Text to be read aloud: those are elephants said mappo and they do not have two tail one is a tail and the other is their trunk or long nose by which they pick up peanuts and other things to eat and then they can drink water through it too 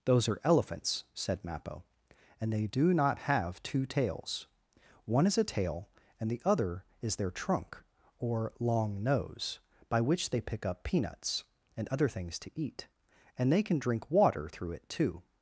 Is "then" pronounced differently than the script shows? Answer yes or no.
yes